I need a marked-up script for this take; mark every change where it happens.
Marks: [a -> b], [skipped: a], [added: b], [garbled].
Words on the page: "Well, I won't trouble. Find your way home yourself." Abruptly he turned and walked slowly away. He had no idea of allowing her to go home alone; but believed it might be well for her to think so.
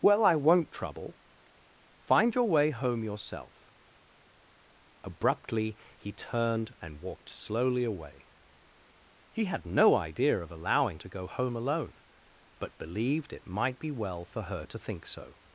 "Well, I won't trouble. Find your way home yourself." Abruptly he turned and walked slowly away. He had no idea of allowing [skipped: her] to go home alone; but believed it might be well for her to think so.